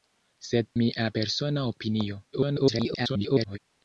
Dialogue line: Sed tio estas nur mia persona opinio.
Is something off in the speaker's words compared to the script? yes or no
yes